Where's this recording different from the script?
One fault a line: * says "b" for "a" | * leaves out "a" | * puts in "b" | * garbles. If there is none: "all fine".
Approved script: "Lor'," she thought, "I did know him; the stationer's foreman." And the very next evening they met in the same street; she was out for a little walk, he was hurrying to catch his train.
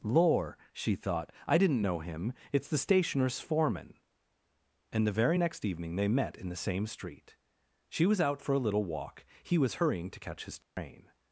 * says "didn't" for "did"
* puts in "it's"